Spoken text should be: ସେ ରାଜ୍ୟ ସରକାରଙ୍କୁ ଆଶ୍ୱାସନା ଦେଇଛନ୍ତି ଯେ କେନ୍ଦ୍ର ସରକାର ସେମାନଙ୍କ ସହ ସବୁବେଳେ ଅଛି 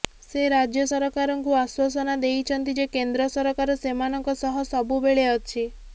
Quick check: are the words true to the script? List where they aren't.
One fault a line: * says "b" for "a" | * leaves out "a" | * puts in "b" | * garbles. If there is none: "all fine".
all fine